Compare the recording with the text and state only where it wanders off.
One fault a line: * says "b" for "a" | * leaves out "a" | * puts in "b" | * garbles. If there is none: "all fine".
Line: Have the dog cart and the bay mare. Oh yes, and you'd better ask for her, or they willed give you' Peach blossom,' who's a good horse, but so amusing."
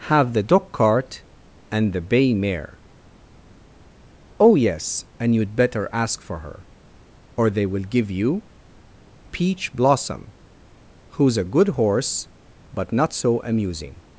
* says "will" for "willed"
* puts in "not"